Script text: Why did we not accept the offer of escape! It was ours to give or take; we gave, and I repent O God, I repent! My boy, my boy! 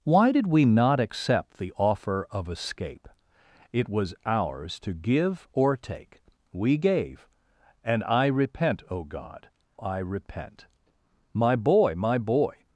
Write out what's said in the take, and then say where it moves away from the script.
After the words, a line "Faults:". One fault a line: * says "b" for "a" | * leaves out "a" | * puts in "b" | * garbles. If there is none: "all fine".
Why did we not accept the offer of escape! It was ours to give or take; we gave, and I repent O God, I repent! My boy, my boy!
Faults:
all fine